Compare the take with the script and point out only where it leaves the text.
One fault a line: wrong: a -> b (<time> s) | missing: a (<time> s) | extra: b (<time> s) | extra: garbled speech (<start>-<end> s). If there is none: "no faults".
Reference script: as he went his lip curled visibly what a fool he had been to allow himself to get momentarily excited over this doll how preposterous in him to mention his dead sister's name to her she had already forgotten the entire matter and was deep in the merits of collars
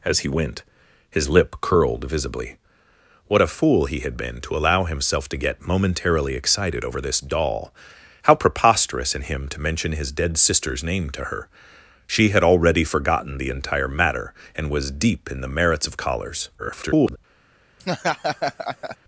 extra: garbled speech (16.6-17.2 s)